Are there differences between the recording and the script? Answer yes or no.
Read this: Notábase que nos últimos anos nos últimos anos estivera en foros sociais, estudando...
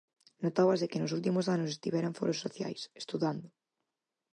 yes